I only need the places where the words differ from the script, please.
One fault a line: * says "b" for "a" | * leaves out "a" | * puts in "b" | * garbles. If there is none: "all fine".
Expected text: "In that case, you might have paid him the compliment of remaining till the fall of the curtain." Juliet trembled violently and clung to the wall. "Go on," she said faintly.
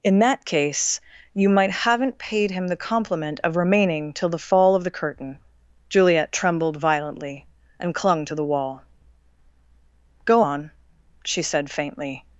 * says "haven't" for "have"